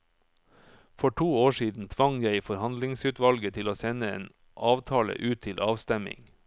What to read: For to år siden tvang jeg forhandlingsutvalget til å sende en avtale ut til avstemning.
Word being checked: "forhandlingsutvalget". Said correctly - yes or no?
yes